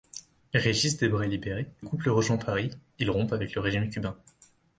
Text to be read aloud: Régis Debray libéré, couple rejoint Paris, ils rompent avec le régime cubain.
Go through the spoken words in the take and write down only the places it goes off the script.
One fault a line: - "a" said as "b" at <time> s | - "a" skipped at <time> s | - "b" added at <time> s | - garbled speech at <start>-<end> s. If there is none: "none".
none